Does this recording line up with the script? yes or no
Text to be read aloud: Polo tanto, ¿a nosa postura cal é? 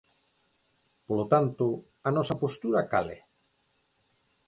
yes